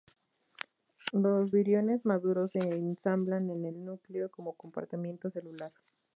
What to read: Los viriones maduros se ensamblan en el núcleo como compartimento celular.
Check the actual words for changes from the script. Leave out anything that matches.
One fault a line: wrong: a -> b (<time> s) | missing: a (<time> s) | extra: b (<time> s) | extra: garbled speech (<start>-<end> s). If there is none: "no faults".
no faults